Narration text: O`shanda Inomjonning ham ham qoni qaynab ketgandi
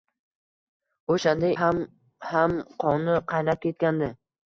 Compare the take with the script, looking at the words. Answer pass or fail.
fail